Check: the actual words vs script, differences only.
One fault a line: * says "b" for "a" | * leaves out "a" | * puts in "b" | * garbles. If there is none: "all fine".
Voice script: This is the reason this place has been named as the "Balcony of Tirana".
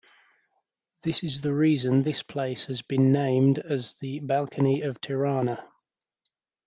all fine